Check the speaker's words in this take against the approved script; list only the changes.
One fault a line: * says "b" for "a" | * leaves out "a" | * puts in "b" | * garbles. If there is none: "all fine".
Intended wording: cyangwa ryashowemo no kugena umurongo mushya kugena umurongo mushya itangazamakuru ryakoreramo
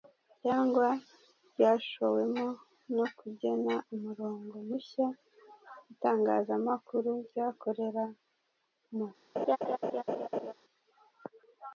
* leaves out "kugena umurongo mushya"